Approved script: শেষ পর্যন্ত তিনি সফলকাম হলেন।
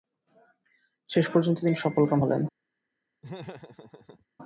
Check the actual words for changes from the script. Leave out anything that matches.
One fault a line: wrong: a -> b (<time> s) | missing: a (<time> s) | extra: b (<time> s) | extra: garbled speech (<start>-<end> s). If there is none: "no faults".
no faults